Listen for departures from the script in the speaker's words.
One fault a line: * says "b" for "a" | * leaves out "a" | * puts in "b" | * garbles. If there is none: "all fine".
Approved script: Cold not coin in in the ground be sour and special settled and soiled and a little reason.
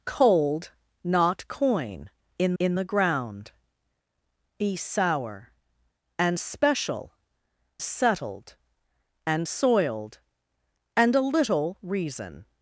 all fine